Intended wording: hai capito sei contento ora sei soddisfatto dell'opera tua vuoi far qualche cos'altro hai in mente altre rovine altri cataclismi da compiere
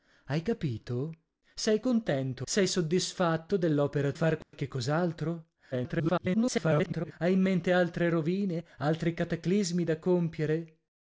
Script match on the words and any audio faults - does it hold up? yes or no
no